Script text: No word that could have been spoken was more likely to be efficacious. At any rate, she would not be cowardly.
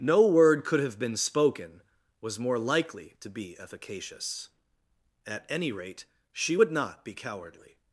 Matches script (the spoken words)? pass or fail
fail